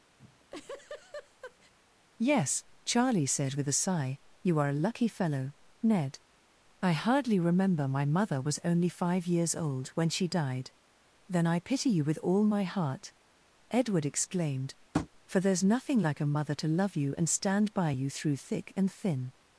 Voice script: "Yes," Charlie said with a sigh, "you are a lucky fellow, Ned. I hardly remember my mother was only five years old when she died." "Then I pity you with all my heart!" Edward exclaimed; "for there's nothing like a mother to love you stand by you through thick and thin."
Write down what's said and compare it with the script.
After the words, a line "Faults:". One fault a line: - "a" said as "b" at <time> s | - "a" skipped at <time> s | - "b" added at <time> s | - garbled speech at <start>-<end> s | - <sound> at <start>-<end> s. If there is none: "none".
"Yes," Charlie said with a sigh, "you are a lucky fellow, Ned. I hardly remember my mother was only five years old when she died." "Then I pity you with all my heart!" Edward exclaimed; "for there's nothing like a mother to love you and stand by you through thick and thin."
Faults:
- laugh at 0.2-1.7 s
- tap at 14.9-15.1 s
- "and" added at 17.2 s